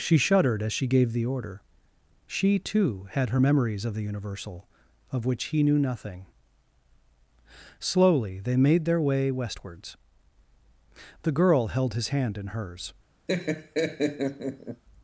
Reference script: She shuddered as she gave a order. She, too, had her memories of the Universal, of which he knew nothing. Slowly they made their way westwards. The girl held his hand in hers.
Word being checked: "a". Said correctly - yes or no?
no